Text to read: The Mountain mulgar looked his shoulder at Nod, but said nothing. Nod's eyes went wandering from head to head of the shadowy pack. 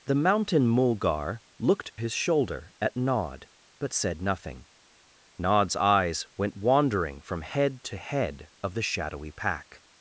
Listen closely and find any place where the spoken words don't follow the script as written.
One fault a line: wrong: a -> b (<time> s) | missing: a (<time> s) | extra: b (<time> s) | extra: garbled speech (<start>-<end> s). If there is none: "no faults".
no faults